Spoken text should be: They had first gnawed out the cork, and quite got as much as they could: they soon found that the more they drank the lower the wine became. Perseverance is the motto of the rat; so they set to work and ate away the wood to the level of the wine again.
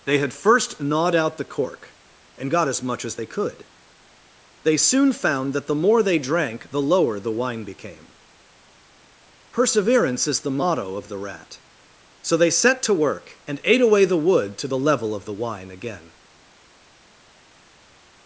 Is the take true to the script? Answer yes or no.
no